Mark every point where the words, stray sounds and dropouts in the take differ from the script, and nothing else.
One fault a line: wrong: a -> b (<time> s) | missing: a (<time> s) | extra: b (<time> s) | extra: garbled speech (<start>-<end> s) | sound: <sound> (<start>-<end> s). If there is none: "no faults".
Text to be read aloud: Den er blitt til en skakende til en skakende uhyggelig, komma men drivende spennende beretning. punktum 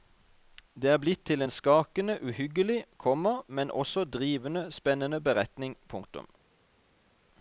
wrong: Den -> Det (0.7 s)
missing: til en skakende (2.2 s)
extra: også (3.7 s)